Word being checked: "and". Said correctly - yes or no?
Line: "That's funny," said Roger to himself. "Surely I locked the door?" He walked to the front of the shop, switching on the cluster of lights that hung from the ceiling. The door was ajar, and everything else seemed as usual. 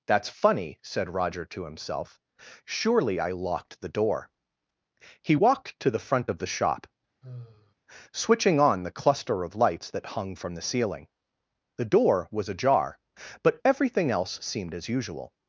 no